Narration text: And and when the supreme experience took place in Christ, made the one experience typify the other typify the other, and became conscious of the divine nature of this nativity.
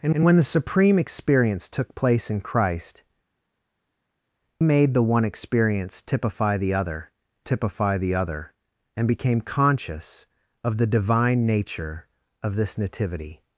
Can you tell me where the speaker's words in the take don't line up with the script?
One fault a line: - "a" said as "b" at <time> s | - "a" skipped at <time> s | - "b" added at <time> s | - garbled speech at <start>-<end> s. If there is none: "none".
none